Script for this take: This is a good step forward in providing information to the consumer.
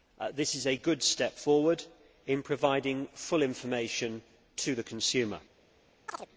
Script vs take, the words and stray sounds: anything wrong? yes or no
yes